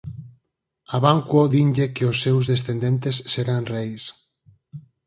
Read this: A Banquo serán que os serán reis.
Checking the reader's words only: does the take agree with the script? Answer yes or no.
no